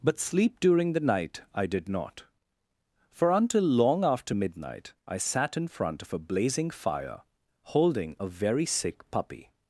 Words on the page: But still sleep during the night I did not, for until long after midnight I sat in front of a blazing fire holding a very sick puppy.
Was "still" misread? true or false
true